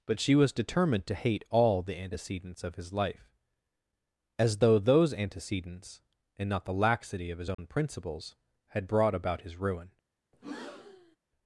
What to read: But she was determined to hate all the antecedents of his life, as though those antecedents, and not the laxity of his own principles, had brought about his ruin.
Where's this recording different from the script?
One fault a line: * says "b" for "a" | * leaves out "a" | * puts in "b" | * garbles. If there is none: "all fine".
all fine